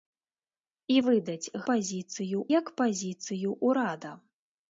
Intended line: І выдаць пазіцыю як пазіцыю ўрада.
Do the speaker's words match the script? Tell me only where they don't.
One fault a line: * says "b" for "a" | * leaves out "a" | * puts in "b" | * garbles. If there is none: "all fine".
all fine